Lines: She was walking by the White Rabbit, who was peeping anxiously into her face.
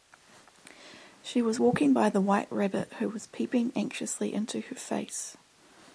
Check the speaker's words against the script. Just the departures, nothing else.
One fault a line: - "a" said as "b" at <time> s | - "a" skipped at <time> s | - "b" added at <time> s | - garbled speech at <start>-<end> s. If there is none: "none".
none